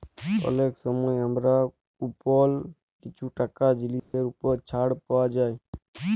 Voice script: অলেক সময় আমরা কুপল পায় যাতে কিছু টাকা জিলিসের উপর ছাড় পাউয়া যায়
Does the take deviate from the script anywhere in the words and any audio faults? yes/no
yes